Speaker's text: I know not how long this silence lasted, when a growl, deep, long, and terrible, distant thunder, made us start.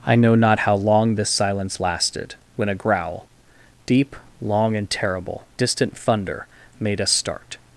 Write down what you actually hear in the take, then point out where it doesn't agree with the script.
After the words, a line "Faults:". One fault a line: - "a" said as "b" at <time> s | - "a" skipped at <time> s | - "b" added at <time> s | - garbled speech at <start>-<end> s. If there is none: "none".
I know not how long this silence lasted, when a growl, deep, long, and terrible, distant thunder, made us start.
Faults:
none